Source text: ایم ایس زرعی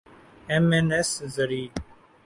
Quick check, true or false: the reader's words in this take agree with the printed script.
false